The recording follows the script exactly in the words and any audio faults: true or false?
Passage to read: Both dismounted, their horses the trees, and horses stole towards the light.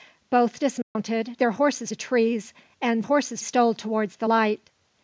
false